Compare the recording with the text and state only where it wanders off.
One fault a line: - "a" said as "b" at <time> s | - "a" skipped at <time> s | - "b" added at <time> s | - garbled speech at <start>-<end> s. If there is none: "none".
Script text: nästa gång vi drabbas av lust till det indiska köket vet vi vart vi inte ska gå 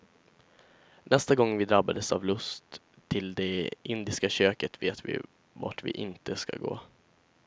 none